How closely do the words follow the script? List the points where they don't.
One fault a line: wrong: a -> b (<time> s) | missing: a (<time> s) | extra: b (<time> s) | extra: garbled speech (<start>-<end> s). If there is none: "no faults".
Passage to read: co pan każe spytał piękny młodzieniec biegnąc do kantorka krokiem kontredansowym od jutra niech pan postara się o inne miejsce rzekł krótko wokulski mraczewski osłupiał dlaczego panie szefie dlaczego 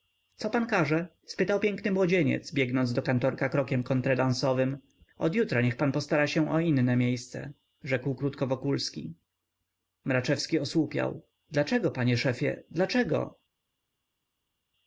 no faults